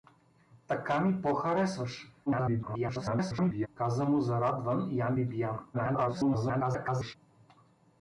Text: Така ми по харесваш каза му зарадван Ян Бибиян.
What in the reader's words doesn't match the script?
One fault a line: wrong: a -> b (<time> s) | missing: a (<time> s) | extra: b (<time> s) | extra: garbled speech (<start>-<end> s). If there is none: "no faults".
extra: garbled speech (2.3-3.7 s)
extra: garbled speech (5.7-7.2 s)